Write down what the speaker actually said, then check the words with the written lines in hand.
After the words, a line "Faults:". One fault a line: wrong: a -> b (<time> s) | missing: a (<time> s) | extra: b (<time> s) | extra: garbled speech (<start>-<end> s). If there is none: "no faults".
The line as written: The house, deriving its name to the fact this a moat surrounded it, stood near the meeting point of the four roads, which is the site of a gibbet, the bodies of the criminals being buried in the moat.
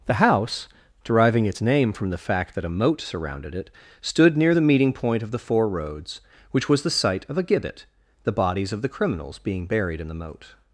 The house, deriving its name from the fact that a moat surrounded it, stood near the meeting point of the four roads, which was the site of a gibbet, the bodies of the criminals being buried in the moat.
Faults:
wrong: to -> from (1.9 s)
wrong: this -> that (2.5 s)
wrong: is -> was (6.7 s)